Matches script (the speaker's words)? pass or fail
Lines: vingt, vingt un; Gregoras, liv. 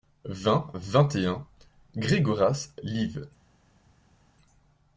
fail